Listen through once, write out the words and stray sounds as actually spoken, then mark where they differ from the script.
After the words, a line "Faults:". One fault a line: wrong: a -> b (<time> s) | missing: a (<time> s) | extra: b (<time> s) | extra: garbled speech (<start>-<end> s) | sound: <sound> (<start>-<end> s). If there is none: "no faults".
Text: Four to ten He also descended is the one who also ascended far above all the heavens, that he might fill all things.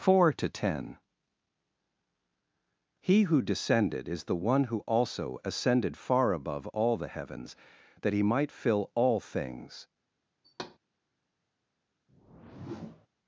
Four to ten He who descended is the one who also ascended far above all the heavens, that he might fill all things.
Faults:
wrong: also -> who (3.3 s)
sound: thud (10.4-10.8 s)
sound: whoosh (12.1-13.1 s)